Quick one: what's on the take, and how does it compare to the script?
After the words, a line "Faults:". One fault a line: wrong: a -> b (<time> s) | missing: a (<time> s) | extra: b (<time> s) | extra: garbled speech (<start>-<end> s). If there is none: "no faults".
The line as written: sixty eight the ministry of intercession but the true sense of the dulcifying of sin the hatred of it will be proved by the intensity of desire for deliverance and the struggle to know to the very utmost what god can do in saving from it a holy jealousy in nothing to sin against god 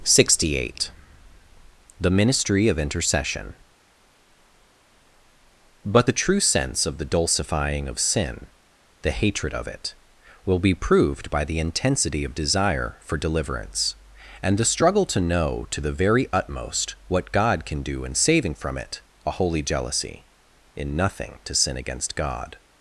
sixty eight the ministry of intercession but the true sense of the dulcifying of sin the hatred of it will be proved by the intensity of desire for deliverance and the struggle to know to the very utmost what god can do in saving from it a holy jealousy in nothing to sin against god
Faults:
no faults